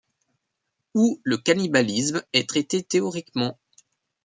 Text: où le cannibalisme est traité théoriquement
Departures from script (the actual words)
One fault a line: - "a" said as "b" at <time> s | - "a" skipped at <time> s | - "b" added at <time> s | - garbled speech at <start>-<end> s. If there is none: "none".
none